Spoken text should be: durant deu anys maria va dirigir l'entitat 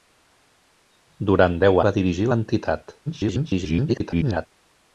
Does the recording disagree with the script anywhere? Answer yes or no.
yes